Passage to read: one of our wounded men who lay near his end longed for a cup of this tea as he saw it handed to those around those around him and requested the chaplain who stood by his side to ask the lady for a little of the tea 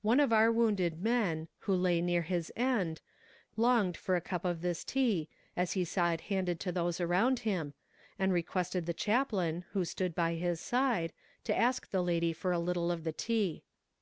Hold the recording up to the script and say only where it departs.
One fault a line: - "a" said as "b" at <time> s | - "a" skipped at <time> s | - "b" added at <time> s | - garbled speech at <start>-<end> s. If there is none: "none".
- "those around" skipped at 7.4 s